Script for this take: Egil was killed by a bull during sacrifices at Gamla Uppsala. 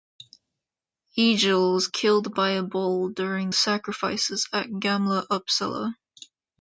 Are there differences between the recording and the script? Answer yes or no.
no